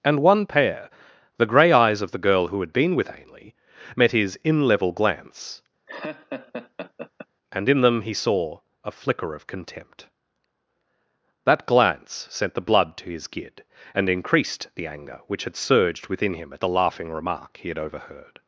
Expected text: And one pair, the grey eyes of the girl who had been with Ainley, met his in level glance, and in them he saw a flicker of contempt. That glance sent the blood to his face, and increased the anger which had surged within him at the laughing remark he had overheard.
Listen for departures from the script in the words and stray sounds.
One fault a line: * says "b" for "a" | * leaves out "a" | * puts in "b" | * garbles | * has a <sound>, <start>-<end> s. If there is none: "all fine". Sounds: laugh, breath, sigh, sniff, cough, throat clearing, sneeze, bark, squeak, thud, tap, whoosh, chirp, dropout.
* has a laugh, 5.9-7.3 s
* says "gid" for "face"